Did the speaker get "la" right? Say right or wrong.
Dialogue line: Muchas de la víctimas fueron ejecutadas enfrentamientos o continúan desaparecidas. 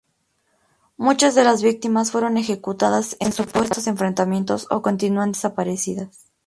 wrong